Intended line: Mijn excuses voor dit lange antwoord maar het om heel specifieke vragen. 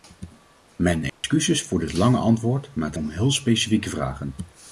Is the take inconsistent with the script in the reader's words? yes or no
no